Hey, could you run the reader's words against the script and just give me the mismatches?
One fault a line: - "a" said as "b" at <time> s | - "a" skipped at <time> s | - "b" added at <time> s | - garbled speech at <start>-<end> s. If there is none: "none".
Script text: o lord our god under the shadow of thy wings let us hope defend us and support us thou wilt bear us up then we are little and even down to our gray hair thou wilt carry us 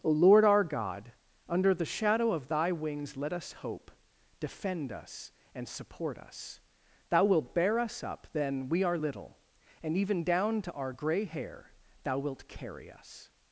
none